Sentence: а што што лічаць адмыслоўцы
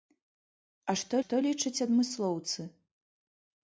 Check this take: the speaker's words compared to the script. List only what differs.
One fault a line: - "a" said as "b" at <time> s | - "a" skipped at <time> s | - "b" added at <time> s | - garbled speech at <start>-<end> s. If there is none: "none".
none